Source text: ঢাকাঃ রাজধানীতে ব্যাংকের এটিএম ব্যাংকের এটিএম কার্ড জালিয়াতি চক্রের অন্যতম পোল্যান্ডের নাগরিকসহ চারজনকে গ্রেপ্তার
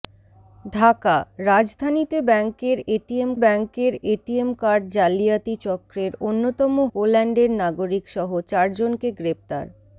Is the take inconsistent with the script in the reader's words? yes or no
no